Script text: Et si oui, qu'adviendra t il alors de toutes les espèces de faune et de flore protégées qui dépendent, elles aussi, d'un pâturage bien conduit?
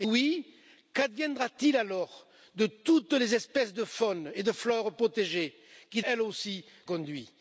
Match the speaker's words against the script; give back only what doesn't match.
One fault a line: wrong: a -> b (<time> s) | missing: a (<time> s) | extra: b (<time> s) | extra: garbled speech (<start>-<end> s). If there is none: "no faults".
missing: si (0.1 s)
missing: dépendent (6.0 s)
missing: d'un pâturage bien (6.7 s)